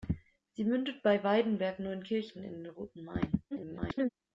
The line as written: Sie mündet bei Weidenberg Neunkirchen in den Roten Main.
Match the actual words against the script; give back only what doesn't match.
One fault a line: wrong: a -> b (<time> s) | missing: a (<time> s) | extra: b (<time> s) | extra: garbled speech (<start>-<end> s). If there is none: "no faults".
extra: garbled speech (3.5-4.1 s)